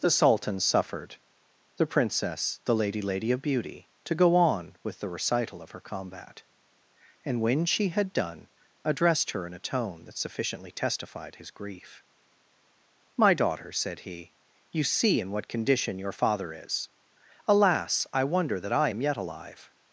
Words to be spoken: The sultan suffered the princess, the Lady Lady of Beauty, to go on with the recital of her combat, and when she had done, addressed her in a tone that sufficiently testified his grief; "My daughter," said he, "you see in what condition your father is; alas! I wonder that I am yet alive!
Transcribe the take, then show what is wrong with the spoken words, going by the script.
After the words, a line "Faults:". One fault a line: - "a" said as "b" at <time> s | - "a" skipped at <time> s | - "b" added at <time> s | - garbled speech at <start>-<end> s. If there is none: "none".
The sultan suffered the princess, the Lady Lady of Beauty, to go on with the recital of her combat, and when she had done, addressed her in a tone that sufficiently testified his grief; "My daughter," said he, "you see in what condition your father is; alas! I wonder that I am yet alive!
Faults:
none